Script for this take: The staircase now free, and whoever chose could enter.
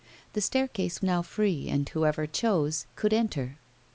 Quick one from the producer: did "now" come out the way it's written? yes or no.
yes